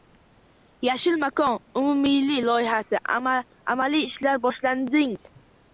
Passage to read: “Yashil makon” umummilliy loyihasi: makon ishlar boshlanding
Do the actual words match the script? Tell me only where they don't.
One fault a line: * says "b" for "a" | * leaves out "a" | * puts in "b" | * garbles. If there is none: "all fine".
* says "amaliy" for "makon"